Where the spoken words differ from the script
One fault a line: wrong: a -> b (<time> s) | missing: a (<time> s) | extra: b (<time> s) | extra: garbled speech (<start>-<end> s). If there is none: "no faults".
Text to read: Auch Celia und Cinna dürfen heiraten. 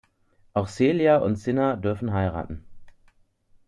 no faults